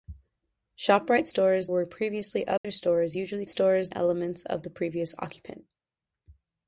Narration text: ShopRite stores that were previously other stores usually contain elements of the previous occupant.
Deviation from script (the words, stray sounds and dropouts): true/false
true